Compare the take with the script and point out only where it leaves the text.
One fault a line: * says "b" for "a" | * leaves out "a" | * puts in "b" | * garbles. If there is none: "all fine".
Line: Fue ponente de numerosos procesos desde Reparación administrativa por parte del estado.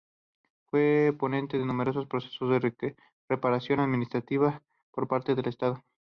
* says "de" for "desde"